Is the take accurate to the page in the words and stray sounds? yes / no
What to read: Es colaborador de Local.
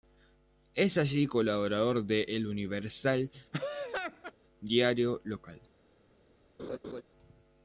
no